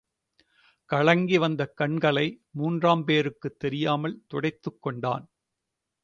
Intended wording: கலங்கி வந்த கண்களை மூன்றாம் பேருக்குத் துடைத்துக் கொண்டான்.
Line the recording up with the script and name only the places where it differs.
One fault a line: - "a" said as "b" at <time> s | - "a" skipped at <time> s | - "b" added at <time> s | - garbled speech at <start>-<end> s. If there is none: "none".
- "தெரியாமல்" added at 3.6 s